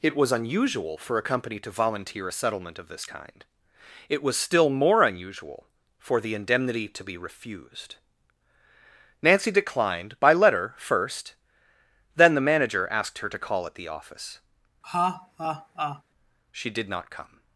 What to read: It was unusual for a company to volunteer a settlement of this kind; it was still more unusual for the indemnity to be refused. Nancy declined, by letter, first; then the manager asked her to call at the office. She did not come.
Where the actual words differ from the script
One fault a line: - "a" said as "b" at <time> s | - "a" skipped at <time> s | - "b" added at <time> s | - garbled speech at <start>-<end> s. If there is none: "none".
none